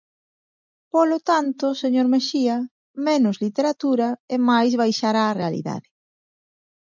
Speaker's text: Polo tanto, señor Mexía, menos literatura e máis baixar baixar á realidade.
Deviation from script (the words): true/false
true